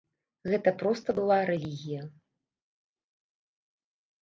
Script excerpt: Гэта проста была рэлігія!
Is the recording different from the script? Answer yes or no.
no